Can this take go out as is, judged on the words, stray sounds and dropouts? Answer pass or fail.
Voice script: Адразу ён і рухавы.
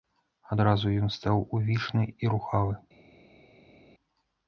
fail